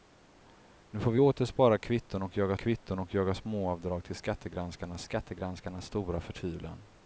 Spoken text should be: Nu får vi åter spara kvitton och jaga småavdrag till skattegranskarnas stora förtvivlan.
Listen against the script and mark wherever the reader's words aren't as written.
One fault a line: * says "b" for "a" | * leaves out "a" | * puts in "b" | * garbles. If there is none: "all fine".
* puts in "kvitton och jaga"
* puts in "skattegranskarnas"